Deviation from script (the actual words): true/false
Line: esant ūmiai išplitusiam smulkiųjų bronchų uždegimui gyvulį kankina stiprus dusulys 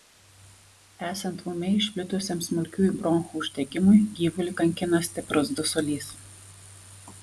false